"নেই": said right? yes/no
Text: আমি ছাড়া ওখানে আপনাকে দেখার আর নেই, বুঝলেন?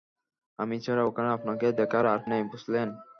yes